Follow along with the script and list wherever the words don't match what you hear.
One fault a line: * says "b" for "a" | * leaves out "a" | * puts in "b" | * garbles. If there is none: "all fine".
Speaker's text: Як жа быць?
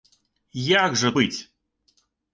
all fine